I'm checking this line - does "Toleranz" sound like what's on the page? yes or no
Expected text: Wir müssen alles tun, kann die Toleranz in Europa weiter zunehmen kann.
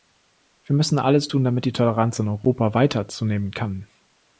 yes